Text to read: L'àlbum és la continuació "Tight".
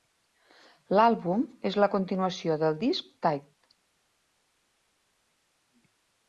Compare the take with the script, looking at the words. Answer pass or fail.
fail